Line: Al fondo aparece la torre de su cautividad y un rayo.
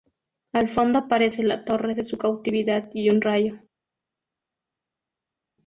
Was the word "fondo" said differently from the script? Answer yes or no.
no